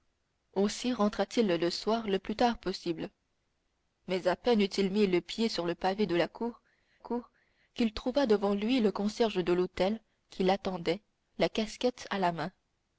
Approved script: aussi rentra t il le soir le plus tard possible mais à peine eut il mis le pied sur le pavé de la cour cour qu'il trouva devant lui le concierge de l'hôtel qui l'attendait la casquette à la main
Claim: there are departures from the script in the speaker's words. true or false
false